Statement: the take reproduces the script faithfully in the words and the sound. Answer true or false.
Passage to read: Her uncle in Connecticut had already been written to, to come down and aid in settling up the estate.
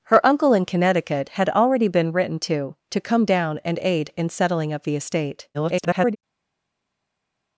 false